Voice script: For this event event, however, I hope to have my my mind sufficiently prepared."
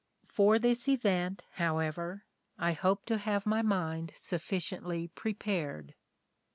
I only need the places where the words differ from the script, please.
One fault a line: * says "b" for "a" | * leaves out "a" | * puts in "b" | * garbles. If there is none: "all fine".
* leaves out "event"
* leaves out "my"